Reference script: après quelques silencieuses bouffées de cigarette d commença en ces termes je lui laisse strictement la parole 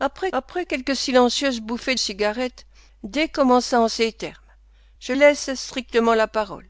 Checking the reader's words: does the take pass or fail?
fail